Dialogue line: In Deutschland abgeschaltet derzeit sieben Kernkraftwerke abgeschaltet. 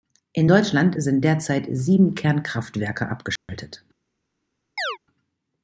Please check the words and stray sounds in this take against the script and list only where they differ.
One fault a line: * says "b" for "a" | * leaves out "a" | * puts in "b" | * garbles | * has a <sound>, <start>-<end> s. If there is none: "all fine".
* says "sind" for "abgeschaltet"
* has a dropout, 3.4-3.5 s
* has a chirp, 4.8-5.0 s